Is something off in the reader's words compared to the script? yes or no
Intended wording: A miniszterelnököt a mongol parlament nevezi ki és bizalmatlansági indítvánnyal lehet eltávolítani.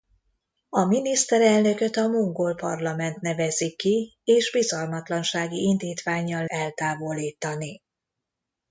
yes